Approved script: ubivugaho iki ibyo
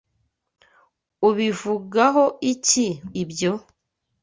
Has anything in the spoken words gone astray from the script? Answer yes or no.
no